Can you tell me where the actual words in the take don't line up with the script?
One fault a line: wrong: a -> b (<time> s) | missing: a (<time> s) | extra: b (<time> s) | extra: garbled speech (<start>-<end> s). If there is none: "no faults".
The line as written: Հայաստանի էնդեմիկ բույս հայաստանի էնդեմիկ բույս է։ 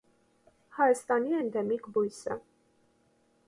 missing: հայաստանի էնդեմիկ բույս (2.2 s)